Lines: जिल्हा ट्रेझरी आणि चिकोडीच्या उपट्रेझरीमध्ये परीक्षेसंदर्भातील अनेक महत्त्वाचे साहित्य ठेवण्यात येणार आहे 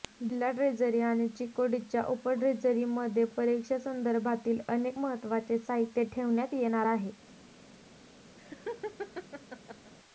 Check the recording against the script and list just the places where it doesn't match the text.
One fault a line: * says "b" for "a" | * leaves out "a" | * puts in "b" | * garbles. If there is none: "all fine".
all fine